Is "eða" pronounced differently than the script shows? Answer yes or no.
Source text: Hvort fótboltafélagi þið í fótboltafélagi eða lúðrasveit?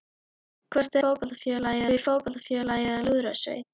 no